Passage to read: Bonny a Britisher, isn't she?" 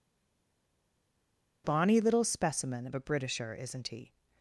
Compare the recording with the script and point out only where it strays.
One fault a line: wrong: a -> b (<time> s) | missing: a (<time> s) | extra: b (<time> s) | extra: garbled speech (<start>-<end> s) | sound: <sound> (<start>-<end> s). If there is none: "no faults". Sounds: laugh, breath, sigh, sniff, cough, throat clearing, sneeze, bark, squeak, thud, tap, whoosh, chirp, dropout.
extra: little specimen of (2.0 s)
wrong: she -> he (3.9 s)